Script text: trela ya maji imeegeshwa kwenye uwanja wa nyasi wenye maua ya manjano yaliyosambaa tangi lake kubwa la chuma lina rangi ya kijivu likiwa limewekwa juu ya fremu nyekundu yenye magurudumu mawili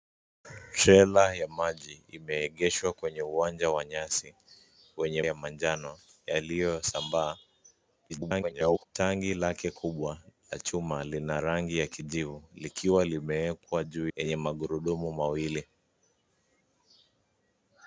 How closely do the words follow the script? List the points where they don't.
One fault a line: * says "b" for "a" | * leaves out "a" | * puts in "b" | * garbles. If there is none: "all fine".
* leaves out "maua"
* garbles
* leaves out "ya fremu nyekundu"